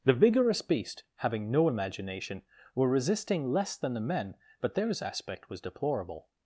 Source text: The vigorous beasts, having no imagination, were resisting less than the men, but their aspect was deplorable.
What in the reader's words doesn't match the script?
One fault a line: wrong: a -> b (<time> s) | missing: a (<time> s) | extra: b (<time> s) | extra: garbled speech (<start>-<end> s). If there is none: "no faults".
wrong: beasts -> beast (0.6 s)
wrong: their -> theirs (4.7 s)